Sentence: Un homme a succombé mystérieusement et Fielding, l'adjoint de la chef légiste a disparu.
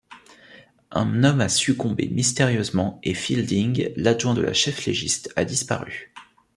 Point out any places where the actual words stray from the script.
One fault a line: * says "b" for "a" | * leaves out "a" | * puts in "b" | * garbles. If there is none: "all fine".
all fine